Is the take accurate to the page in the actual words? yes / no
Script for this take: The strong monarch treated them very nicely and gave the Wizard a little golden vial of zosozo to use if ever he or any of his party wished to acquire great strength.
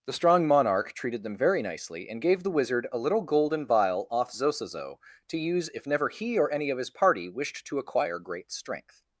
no